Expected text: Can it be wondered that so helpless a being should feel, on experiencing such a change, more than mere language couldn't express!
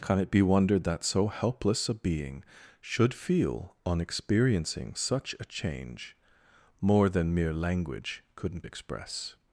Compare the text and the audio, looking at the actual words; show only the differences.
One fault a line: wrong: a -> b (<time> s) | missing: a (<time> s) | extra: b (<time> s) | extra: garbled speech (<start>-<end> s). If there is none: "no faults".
no faults